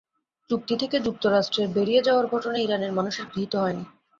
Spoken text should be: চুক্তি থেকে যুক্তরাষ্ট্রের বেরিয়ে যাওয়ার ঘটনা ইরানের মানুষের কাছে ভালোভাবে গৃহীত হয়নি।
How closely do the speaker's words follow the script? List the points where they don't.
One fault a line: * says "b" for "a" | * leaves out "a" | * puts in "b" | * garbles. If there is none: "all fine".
* leaves out "কাছে ভালোভাবে"